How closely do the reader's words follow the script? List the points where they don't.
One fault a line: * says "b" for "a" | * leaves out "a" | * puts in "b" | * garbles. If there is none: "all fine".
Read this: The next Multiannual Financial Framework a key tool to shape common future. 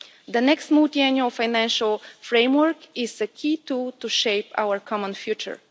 * puts in "is"
* puts in "our"